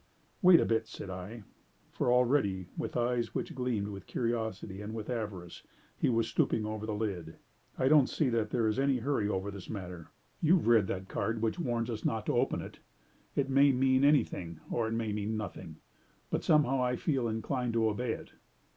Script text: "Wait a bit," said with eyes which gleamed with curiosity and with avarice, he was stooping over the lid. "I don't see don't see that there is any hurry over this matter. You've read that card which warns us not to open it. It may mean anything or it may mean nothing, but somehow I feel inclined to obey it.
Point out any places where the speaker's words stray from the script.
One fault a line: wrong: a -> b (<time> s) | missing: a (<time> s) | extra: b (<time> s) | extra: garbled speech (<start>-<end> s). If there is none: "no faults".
extra: I for already (1.1 s)
missing: don't see (8.3 s)